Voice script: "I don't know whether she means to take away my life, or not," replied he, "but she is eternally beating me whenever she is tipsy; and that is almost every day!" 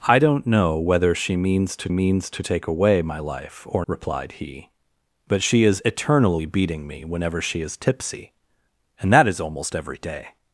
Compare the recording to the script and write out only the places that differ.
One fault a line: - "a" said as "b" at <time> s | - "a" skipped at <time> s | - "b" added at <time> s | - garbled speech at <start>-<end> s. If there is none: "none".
- "means to" added at 1.9 s
- "not" skipped at 3.8 s